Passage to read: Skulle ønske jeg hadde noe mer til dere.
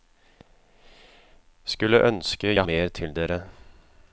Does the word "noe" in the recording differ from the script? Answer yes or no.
yes